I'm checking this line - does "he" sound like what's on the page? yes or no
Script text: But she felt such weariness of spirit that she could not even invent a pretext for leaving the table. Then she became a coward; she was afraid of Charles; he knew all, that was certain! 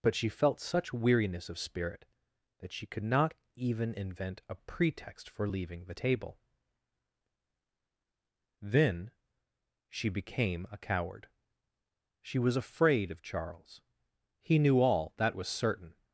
yes